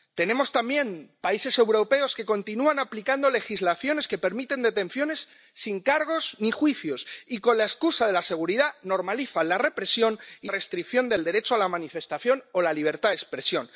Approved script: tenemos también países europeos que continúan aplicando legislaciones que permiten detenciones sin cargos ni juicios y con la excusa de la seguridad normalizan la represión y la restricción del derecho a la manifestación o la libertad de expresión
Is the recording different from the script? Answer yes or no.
yes